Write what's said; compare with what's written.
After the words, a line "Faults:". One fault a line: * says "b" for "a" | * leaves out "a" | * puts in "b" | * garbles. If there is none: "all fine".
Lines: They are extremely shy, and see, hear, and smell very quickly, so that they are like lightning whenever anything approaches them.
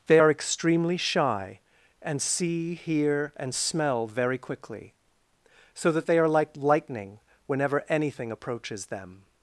They are extremely shy, and see, hear, and smell very quickly, so that they are like lightning whenever anything approaches them.
Faults:
all fine